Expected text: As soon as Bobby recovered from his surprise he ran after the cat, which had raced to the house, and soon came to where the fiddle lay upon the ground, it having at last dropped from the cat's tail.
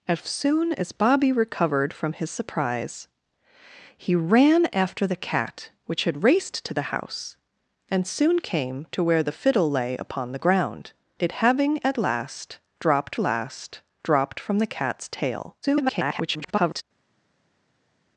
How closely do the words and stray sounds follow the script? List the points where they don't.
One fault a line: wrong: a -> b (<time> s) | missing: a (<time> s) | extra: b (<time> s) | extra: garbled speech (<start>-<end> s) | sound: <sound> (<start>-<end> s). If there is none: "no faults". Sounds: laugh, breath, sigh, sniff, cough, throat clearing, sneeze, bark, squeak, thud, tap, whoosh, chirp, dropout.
extra: last dropped (13.2 s)
extra: garbled speech (15.6-16.8 s)